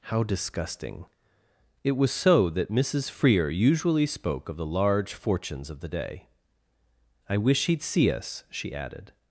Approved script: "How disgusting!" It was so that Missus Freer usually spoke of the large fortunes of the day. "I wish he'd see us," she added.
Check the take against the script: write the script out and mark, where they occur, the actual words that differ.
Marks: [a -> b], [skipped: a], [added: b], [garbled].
"How disgusting!" It was so that Missus Freer usually spoke of the large fortunes of the day. "I wish he'd see us," she added.